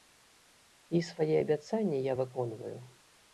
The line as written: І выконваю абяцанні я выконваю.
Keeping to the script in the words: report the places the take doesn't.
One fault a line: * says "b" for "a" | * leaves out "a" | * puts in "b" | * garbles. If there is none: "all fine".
* says "свае" for "выконваю"